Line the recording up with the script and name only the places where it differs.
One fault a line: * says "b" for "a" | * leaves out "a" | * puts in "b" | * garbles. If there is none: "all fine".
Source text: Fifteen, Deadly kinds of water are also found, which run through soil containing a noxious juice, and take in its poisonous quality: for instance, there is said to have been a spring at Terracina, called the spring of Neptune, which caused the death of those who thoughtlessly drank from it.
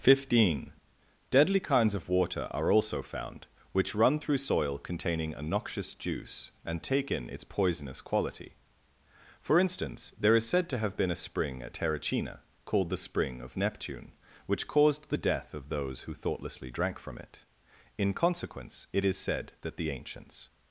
* puts in "In consequence it is said that the ancients"